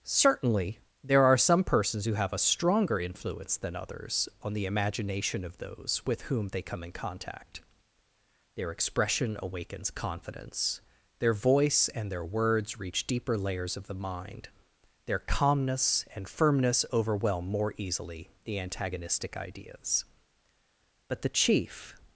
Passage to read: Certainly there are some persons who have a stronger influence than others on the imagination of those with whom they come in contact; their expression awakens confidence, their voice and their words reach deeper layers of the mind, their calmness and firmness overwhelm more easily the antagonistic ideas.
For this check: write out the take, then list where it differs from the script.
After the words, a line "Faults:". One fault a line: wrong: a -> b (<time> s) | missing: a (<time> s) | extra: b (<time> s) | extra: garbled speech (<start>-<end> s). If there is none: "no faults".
Certainly there are some persons who have a stronger influence than others on the imagination of those with whom they come in contact; their expression awakens confidence, their voice and their words reach deeper layers of the mind, their calmness and firmness overwhelm more easily the antagonistic ideas. But the chief
Faults:
extra: But the chief (21.1 s)